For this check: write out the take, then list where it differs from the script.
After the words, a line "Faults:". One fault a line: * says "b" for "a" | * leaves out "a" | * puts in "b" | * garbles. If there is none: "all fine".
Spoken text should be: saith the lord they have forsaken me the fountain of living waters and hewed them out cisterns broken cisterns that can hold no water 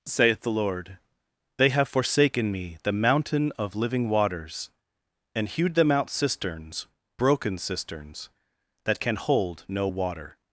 saith the lord they have forsaken me the mountain of living waters and hewed them out cisterns broken cisterns that can hold no water
Faults:
* says "mountain" for "fountain"